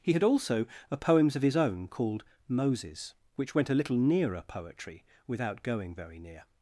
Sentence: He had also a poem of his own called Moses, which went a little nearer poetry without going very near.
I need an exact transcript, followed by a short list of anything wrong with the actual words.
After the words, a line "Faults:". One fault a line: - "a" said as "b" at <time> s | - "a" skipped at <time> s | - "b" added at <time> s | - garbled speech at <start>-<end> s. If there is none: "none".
He had also a poems of his own called Moses, which went a little nearer poetry without going very near.
Faults:
- "poem" said as "poems" at 1.0 s